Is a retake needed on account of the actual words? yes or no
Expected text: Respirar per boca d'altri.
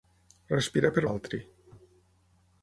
yes